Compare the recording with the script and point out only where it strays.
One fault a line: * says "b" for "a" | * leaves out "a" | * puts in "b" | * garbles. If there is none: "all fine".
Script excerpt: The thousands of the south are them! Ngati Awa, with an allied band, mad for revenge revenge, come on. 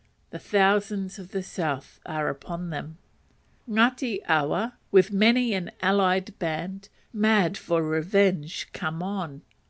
* puts in "upon"
* puts in "many"
* leaves out "revenge"